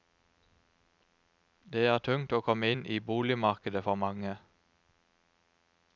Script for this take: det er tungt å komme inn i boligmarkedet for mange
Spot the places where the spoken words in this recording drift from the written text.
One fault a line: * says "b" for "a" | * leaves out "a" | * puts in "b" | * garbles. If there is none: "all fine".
all fine